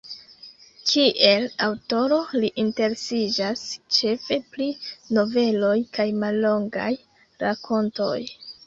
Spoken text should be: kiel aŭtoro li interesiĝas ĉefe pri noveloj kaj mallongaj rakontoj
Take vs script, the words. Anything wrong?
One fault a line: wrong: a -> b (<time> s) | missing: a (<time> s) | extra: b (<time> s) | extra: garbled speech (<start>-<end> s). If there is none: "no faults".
no faults